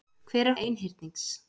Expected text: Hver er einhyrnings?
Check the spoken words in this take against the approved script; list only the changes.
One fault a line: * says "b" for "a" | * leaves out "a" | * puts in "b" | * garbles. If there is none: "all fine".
all fine